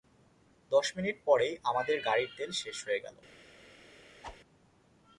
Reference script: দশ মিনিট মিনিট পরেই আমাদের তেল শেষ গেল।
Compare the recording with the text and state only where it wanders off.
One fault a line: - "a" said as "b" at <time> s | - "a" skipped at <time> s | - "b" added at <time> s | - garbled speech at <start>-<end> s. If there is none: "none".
- "মিনিট" skipped at 1.2 s
- "গাড়ির" added at 2.1 s
- "হয়ে" added at 2.9 s